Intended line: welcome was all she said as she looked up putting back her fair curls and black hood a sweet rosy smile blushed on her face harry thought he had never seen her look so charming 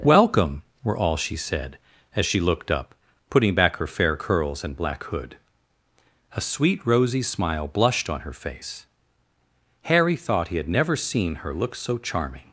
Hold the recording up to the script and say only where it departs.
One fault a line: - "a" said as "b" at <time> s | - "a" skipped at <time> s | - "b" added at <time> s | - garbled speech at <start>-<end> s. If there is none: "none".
- "was" said as "were" at 0.8 s